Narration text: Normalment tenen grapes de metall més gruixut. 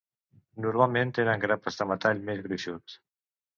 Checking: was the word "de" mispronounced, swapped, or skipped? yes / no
no